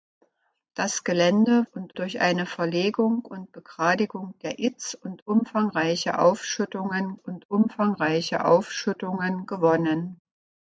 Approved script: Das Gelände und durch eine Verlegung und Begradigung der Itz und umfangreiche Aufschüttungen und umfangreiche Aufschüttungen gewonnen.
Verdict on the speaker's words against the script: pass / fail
pass